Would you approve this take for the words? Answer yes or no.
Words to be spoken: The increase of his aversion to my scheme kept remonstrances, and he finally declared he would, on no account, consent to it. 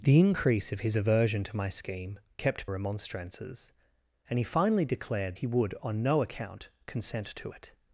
yes